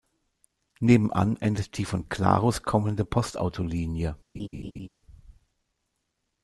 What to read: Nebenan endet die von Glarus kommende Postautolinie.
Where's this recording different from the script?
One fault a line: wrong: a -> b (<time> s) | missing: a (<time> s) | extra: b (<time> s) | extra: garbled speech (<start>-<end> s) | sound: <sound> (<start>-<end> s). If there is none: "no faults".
sound: laugh (4.3-4.9 s)